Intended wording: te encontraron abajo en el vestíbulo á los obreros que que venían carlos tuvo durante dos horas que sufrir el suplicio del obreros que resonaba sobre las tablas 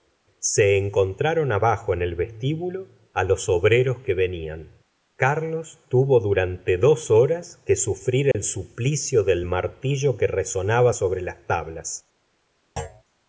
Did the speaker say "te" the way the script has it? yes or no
no